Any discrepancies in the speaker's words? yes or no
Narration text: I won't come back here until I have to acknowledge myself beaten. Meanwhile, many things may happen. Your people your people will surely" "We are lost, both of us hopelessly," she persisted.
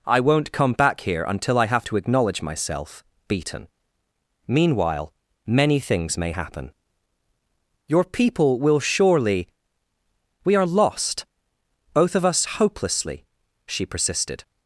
yes